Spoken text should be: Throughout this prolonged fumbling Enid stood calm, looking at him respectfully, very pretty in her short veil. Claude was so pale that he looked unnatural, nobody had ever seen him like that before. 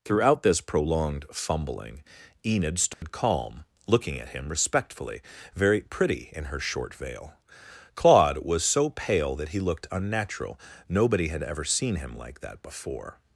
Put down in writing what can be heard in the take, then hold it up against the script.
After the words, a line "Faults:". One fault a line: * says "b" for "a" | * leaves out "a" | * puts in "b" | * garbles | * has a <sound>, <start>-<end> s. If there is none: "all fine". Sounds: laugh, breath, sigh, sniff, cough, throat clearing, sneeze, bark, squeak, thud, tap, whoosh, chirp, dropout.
Throughout this prolonged fumbling Enid stood calm, looking at him respectfully, very pretty in her short veil. Claude was so pale that he looked unnatural, nobody had ever seen him like that before.
Faults:
* has a dropout, 2.9-3.0 s